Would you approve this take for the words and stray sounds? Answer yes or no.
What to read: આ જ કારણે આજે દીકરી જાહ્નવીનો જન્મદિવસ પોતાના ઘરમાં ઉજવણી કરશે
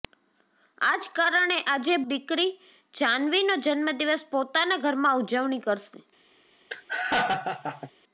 no